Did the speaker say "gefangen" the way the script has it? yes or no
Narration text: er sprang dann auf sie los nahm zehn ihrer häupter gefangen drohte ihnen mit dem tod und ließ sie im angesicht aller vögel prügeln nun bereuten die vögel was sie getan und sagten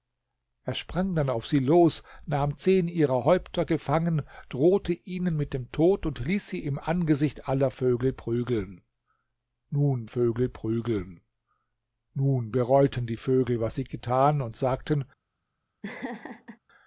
yes